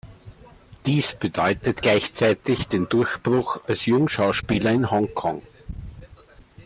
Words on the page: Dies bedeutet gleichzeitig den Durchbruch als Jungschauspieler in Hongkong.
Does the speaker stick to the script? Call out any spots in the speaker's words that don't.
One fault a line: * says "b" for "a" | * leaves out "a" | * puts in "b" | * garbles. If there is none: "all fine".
all fine